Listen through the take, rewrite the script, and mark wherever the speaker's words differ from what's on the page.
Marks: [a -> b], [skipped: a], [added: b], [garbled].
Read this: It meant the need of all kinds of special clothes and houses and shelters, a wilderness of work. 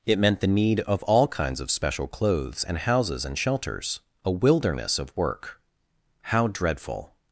It meant the need of all kinds of special clothes and houses and shelters, a wilderness of work. [added: How dreadful]